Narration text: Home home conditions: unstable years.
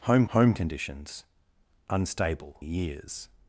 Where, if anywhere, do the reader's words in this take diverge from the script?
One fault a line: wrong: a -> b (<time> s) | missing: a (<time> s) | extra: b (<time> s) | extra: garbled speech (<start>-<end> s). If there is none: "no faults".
no faults